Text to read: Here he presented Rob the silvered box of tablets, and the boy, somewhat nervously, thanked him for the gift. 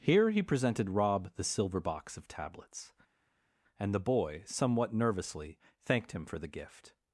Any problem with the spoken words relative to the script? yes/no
yes